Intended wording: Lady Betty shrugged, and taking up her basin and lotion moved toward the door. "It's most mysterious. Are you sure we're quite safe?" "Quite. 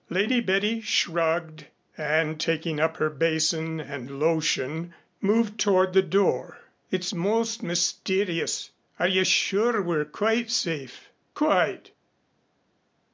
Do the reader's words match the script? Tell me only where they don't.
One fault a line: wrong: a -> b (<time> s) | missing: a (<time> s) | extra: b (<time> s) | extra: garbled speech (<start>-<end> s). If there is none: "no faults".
no faults